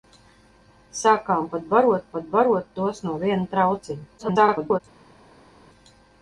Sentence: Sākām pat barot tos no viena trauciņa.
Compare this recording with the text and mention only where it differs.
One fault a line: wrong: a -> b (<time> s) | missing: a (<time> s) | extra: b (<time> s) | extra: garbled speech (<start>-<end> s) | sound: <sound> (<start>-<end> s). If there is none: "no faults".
extra: pat barot (2.1 s)
extra: garbled speech (4.2-4.8 s)